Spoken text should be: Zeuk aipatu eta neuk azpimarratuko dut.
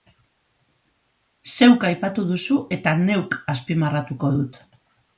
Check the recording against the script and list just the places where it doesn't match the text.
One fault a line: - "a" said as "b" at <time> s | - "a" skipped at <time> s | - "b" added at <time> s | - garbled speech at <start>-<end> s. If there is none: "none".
- "duzu" added at 2.3 s